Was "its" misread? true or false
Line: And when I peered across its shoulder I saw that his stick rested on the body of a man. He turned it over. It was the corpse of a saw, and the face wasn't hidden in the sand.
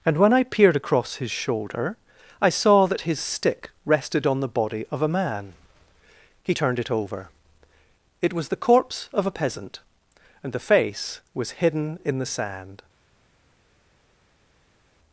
true